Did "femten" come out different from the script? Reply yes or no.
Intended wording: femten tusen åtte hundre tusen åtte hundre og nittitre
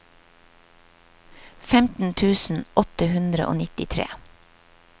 no